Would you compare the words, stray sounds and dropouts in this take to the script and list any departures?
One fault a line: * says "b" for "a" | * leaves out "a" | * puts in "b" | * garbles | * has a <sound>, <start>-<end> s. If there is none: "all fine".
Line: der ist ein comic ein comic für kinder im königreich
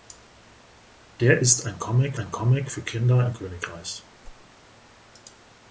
* has a whoosh, 4.2-4.5 s